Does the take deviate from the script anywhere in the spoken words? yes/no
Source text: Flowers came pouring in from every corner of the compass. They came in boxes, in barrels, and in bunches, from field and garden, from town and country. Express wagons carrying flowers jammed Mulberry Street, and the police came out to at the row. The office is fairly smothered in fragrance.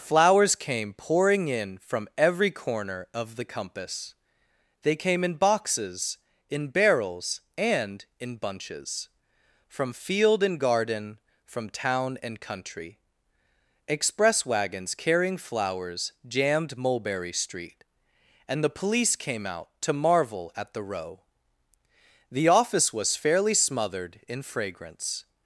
yes